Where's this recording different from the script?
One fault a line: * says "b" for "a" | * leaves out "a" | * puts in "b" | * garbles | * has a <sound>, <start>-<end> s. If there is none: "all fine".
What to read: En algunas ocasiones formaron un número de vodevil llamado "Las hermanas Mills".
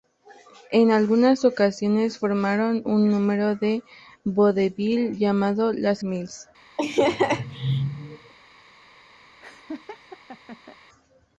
* leaves out "hermanas"
* has a laugh, 6.8-8.3 s
* has a laugh, 9.4-10.8 s